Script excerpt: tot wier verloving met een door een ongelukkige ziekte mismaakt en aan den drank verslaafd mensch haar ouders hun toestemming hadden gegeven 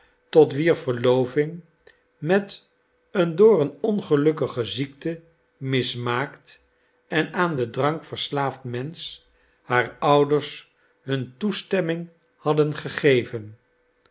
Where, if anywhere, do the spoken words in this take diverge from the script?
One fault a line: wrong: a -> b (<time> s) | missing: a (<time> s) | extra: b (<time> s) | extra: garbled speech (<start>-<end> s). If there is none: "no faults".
no faults